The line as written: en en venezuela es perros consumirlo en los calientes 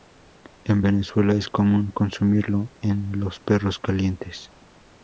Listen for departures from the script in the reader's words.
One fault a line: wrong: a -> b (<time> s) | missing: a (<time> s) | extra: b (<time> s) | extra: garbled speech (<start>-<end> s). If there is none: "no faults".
missing: en (0.8 s)
wrong: perros -> común (1.5 s)
extra: perros (3.4 s)